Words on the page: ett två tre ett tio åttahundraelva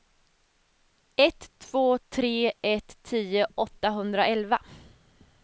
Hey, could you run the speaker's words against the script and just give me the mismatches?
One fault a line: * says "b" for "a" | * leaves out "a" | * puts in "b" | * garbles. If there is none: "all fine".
all fine